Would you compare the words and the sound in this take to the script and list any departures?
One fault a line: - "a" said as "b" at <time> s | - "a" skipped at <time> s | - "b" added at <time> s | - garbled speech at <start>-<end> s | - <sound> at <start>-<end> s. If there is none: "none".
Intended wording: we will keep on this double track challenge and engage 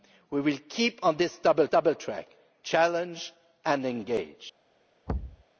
- "double" added at 1.7 s
- thud at 5.1-5.4 s